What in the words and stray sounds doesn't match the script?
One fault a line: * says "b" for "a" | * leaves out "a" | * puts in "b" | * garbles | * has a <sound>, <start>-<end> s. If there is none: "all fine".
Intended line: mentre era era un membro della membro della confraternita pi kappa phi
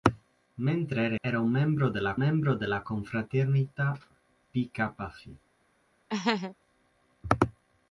* has a laugh, 6.1-6.6 s